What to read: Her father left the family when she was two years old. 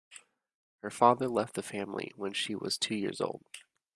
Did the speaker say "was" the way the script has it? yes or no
yes